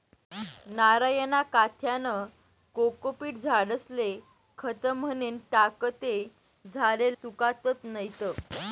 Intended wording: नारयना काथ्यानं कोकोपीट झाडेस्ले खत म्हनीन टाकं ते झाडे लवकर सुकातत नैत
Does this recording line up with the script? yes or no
no